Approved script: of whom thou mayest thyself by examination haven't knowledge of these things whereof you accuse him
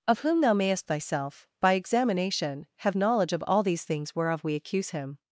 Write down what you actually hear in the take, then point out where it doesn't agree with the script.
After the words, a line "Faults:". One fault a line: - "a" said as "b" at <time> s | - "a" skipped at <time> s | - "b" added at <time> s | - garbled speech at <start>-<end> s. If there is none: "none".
of whom thou mayest thyself by examination have knowledge of all these things whereof we accuse him
Faults:
- "haven't" said as "have" at 2.8 s
- "all" added at 3.5 s
- "you" said as "we" at 4.4 s